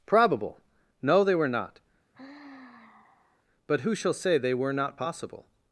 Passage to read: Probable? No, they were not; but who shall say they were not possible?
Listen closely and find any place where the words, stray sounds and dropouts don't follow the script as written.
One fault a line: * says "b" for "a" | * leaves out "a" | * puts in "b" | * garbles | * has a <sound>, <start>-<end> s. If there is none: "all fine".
* has a sigh, 2.1-3.4 s